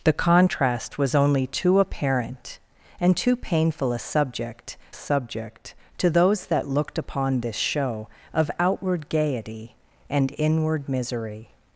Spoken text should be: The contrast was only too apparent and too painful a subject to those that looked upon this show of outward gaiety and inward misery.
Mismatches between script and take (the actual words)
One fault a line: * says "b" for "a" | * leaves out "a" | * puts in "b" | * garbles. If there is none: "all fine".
* puts in "subject"